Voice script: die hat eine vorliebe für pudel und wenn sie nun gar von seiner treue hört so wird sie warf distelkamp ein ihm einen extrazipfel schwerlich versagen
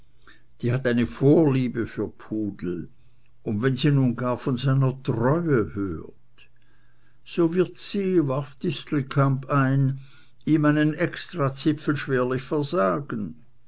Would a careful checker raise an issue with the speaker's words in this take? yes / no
no